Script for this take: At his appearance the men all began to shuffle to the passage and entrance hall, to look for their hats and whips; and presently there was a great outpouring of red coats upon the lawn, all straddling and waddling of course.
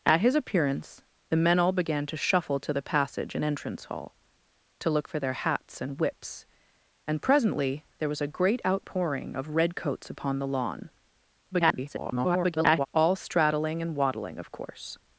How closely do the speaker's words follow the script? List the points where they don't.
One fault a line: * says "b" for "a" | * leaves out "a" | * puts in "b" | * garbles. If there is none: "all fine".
* garbles